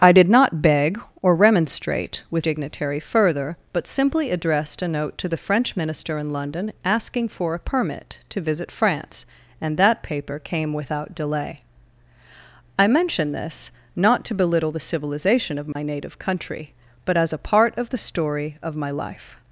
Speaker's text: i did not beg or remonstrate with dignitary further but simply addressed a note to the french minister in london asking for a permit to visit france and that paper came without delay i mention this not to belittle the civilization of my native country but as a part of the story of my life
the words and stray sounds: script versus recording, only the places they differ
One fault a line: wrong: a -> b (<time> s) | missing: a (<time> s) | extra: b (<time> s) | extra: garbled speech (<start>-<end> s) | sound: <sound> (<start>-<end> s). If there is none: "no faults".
sound: dropout (15.7-15.8 s)